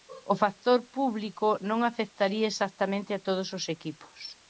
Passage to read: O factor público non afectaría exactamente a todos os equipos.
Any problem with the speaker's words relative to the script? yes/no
no